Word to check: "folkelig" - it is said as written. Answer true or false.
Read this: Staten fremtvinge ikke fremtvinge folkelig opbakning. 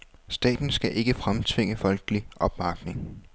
true